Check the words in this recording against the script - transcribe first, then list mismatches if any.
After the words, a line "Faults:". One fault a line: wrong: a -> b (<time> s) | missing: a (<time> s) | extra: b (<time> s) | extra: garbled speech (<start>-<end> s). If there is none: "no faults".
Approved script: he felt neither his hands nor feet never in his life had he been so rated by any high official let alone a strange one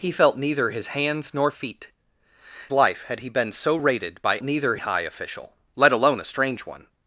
he felt neither his hands nor feet life had he been so rated by neither high official let alone a strange one
Faults:
missing: never in his (1.9 s)
wrong: any -> neither (4.4 s)